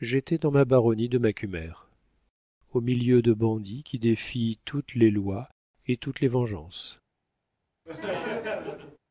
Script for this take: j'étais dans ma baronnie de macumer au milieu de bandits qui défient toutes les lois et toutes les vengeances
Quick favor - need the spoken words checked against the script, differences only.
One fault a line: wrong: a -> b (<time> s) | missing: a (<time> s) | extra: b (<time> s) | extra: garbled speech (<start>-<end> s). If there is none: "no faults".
no faults